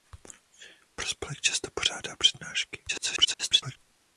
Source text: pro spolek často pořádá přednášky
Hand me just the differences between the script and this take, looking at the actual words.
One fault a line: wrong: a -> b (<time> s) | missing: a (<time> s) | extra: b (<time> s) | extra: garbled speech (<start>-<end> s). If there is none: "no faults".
extra: garbled speech (2.9-3.8 s)